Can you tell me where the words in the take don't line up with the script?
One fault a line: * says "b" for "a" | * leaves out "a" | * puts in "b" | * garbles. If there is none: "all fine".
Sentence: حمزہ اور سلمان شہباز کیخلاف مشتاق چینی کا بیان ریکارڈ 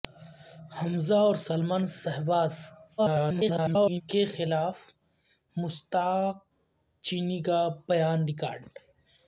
* garbles